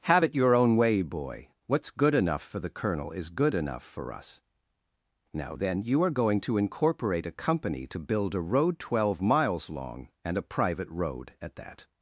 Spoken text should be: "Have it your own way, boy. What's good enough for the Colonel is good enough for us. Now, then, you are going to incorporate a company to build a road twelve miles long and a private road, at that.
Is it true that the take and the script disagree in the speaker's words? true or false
false